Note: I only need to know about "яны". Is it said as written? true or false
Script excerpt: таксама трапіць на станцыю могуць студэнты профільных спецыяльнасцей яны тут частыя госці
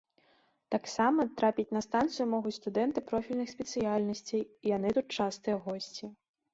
true